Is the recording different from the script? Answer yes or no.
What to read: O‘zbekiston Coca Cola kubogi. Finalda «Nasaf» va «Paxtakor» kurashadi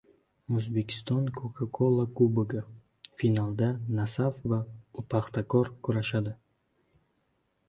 no